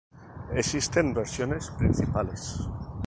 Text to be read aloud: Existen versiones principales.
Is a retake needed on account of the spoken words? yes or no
no